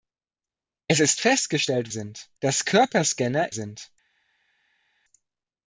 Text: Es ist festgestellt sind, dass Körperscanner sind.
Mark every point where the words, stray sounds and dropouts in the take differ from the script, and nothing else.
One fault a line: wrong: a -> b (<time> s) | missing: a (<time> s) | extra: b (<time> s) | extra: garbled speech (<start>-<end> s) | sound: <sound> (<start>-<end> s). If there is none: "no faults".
no faults